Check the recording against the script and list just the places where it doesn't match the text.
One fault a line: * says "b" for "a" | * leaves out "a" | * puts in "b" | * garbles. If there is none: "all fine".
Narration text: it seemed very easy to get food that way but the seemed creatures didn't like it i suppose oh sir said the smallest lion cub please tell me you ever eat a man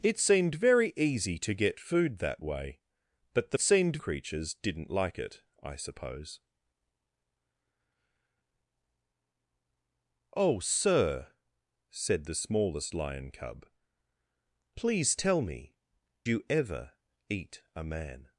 all fine